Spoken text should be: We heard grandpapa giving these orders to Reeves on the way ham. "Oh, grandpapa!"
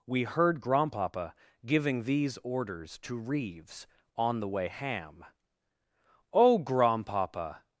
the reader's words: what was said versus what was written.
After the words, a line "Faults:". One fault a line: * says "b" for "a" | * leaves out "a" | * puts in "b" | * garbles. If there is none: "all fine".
We heard grandpapa giving these orders to Reeves on the way ham. "Oh, grandpapa!"
Faults:
all fine